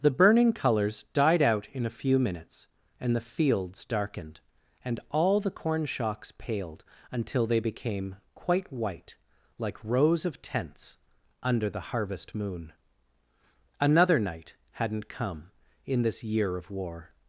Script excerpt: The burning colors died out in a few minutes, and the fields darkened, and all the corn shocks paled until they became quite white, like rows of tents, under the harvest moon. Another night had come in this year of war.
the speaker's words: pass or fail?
fail